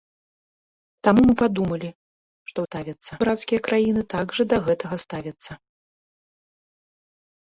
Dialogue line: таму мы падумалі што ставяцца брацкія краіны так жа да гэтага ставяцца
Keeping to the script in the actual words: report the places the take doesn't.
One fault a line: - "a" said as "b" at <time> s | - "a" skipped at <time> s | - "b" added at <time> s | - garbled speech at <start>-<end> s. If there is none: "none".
none